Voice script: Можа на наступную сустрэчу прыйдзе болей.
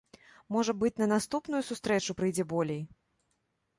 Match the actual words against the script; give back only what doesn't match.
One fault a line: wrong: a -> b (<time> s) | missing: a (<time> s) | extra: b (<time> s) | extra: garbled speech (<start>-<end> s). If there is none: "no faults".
extra: быць (0.8 s)